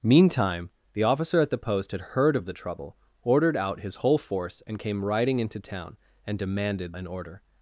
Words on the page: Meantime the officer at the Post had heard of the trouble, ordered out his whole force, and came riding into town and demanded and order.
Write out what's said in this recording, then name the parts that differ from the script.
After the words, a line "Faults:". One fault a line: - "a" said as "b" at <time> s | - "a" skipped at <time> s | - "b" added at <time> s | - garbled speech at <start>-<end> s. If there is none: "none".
Meantime the officer at the Post had heard of the trouble, ordered out his whole force, and came riding into town and demanded and order.
Faults:
none